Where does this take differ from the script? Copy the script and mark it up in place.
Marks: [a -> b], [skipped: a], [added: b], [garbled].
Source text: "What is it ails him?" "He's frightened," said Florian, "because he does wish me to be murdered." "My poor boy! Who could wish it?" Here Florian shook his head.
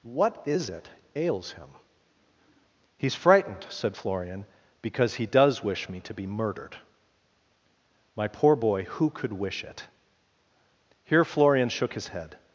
"What is it ails him?" "He's frightened," said Florian, "because he does wish me to be murdered." "My poor boy! Who could wish it?" Here Florian shook his head.